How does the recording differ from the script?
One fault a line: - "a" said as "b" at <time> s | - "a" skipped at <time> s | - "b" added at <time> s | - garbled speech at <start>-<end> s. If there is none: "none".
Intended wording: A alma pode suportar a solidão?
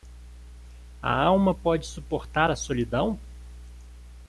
none